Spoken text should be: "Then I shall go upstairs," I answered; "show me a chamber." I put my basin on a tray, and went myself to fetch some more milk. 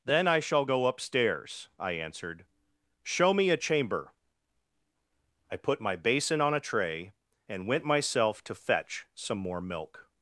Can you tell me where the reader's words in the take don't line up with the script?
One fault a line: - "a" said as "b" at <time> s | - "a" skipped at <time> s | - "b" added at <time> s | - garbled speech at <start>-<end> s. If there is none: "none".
none